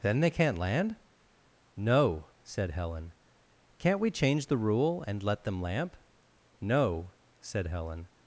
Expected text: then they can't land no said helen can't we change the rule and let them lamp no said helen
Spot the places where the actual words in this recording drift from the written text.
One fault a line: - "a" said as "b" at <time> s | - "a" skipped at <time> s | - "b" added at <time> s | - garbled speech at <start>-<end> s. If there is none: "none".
none